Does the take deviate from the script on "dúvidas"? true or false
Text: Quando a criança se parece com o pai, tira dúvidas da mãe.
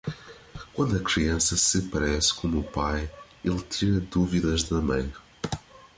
false